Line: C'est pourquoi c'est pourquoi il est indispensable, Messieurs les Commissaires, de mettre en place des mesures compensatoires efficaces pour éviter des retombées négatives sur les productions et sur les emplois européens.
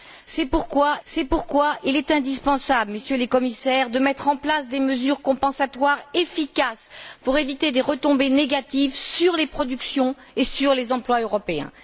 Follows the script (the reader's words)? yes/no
yes